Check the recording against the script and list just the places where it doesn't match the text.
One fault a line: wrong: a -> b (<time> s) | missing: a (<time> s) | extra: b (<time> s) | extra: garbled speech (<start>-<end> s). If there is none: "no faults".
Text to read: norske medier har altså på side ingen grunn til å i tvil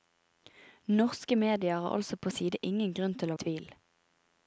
no faults